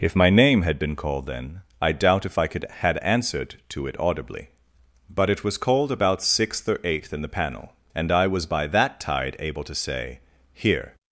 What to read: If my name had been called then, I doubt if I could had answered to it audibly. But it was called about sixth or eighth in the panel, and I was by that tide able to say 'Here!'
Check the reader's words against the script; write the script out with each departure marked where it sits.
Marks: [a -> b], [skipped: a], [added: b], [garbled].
If my name had been called then, I doubt if I could had answered to it audibly. But it was called about sixth or eighth in the panel, and I was by that tide able to say 'Here!'